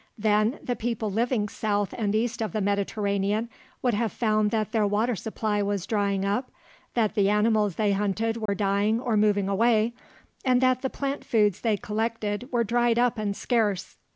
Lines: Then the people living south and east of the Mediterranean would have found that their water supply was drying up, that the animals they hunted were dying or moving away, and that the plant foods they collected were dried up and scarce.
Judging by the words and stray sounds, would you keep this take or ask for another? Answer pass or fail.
fail